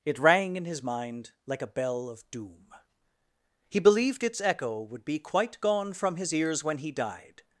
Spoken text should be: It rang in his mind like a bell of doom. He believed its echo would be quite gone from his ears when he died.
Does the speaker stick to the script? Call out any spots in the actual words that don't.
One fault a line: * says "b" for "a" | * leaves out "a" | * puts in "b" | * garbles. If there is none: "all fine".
all fine